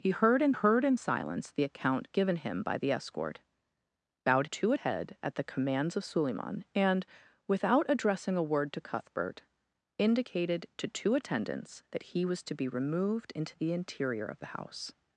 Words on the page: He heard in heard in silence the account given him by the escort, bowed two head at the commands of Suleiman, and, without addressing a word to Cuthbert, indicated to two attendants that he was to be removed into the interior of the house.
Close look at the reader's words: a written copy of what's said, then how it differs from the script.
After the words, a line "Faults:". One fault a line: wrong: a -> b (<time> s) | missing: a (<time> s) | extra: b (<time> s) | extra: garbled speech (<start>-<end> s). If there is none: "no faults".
He heard in heard in silence the account given him by the escort, bowed two head at the commands of Suleiman, and, without addressing a word to Cuthbert, indicated to two attendants that he was to be removed into the interior of the house.
Faults:
no faults